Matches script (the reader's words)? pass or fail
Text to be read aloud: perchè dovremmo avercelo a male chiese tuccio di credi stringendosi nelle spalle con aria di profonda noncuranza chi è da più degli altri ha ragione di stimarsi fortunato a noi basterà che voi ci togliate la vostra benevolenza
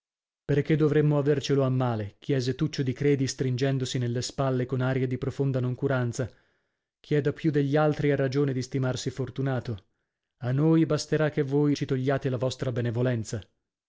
pass